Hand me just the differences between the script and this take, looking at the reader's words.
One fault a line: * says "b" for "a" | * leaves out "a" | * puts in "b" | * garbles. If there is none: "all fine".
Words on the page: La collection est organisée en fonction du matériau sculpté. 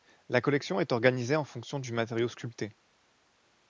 all fine